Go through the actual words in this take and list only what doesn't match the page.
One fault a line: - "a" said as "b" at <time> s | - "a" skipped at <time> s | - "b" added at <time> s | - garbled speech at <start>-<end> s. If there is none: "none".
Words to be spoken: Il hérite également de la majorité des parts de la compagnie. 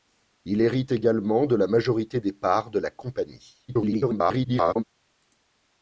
- garbled speech at 3.7-4.8 s